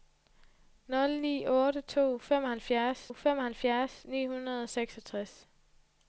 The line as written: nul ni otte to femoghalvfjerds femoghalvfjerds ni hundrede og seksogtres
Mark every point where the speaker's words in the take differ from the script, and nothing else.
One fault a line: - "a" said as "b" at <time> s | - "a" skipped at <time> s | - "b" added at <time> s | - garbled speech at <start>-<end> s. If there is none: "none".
none